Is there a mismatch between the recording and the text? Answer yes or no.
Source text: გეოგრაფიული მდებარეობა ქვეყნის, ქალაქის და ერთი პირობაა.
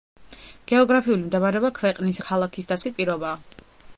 no